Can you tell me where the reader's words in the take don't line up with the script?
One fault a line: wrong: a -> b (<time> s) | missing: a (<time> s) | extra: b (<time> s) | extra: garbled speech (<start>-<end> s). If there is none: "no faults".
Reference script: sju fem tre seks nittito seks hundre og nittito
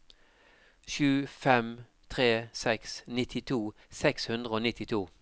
no faults